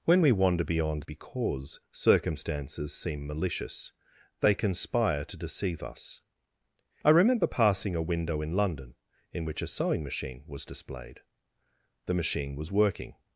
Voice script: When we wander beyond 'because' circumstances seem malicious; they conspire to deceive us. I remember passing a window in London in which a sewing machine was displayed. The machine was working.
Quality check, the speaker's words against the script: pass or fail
pass